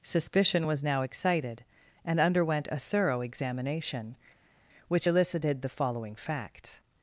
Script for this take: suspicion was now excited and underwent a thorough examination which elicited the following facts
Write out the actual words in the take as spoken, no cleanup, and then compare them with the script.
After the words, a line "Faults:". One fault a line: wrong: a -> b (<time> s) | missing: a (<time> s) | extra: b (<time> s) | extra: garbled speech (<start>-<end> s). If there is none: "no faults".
suspicion was now excited and underwent a thorough examination which elicited the following facts
Faults:
no faults